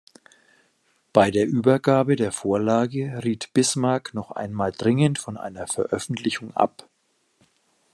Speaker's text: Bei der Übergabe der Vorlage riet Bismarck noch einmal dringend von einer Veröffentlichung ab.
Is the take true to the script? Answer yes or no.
yes